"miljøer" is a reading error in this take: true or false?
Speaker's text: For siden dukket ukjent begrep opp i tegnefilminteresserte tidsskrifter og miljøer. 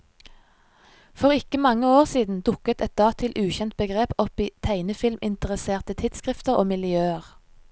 false